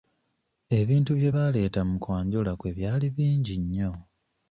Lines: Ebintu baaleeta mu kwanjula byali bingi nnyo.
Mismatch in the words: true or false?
true